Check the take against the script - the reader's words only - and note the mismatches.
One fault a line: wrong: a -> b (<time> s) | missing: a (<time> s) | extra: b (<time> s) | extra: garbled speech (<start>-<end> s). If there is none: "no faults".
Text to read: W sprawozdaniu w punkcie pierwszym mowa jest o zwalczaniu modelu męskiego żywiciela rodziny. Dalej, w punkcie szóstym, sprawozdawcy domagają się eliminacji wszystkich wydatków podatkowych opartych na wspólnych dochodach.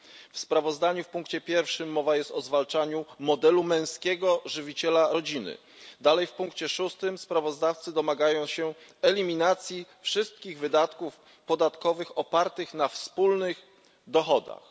no faults